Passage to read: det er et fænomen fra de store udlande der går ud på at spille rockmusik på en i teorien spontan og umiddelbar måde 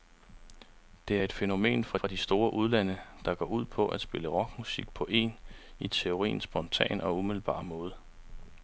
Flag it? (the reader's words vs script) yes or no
yes